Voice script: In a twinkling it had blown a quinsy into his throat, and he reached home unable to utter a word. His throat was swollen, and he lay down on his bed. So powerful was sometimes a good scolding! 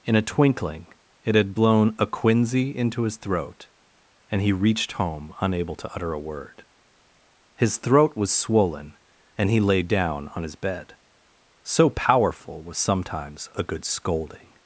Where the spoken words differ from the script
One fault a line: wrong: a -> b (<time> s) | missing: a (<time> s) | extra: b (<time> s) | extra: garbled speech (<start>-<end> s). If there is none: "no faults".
no faults